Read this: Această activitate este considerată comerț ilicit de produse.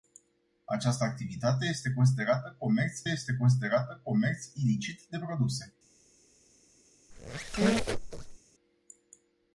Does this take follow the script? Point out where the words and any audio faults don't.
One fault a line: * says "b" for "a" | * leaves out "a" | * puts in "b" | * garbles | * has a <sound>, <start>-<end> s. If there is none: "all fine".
* puts in "este considerată comerț"
* has a squeak, 7.1-8.4 s